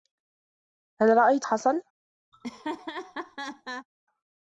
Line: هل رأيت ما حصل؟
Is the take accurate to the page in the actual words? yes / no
no